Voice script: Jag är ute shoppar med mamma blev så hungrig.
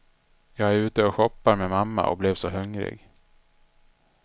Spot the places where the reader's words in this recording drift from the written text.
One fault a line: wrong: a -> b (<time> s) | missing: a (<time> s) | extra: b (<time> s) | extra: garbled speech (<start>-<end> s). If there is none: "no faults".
extra: och (1.0 s)
extra: och (2.1 s)